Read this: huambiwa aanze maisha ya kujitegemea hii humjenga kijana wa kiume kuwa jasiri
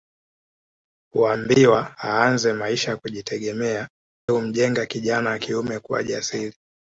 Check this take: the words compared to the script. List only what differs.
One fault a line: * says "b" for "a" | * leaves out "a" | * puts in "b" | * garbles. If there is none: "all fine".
* leaves out "hii"